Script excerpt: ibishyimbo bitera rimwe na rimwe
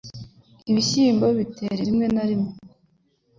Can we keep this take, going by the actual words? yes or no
yes